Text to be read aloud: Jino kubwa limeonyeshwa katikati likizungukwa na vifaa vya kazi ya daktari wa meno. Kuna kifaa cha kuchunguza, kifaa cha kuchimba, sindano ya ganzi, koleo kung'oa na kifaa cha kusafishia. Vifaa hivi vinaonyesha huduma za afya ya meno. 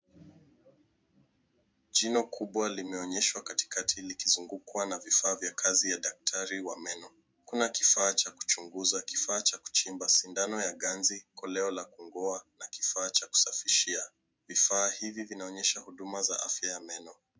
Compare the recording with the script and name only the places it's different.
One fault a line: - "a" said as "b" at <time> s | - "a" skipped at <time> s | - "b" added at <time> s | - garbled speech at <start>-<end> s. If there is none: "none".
- "la" added at 11.7 s